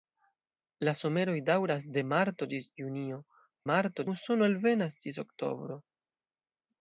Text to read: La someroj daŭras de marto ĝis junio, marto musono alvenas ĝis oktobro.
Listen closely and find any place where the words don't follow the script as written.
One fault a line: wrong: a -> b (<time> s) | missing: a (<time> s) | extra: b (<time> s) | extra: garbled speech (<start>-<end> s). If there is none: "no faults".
no faults